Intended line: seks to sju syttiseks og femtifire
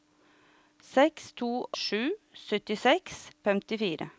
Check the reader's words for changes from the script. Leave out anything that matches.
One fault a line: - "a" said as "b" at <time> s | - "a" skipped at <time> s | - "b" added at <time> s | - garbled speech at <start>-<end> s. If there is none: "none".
none